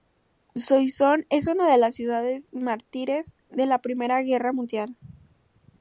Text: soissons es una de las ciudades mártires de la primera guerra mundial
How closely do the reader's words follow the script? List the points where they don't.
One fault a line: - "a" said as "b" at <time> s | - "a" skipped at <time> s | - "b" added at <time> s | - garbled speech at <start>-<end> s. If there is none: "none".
none